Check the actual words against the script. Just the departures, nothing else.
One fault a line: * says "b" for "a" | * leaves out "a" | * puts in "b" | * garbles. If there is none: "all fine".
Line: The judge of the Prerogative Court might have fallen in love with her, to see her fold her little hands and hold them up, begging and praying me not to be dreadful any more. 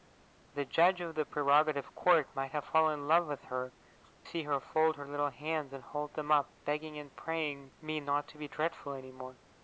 * leaves out "to"